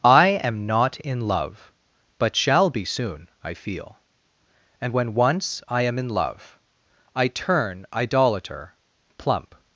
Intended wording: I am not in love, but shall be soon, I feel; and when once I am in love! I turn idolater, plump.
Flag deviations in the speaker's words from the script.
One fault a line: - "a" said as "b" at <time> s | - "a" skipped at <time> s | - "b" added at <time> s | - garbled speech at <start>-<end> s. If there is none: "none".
none